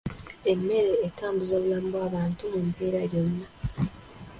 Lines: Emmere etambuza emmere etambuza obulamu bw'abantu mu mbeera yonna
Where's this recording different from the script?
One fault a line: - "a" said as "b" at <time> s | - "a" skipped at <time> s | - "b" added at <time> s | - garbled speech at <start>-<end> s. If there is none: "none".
- "emmere etambuza" skipped at 1.5 s